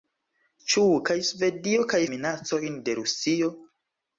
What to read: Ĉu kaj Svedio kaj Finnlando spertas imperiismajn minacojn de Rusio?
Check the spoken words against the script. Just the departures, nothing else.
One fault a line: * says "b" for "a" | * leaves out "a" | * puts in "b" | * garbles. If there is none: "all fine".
* leaves out "Finnlando spertas imperiismajn"